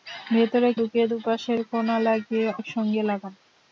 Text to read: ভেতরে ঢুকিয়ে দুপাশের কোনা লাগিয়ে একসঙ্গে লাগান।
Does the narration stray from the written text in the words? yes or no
no